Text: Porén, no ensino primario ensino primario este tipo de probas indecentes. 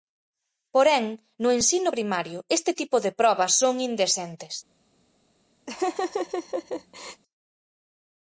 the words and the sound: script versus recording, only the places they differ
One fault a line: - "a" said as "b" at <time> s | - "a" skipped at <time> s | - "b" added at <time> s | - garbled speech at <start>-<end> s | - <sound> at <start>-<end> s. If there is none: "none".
- "ensino primario" skipped at 2.4 s
- "son" added at 3.6 s
- laugh at 5.7-7.2 s